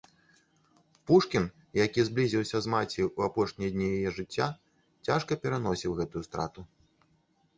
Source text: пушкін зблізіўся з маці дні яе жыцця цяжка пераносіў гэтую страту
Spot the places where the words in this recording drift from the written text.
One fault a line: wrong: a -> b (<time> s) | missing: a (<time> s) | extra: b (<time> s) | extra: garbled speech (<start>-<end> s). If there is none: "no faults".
extra: які (1.8 s)
extra: ў апошнія (3.0 s)